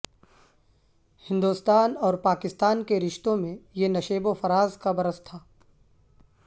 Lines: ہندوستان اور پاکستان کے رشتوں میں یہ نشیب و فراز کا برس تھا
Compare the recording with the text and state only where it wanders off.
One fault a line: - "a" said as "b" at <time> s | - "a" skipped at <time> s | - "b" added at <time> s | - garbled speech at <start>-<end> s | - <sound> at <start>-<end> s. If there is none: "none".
none